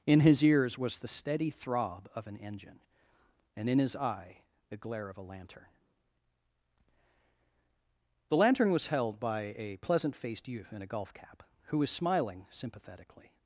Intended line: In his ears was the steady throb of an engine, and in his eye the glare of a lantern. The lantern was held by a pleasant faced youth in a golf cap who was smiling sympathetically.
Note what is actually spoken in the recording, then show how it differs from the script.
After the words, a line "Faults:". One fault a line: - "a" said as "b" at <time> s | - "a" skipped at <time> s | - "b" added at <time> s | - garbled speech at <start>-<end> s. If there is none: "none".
In his ears was the steady throb of an engine, and in his eye the glare of a lantern. The lantern was held by a pleasant faced youth in a golf cap who was smiling sympathetically.
Faults:
none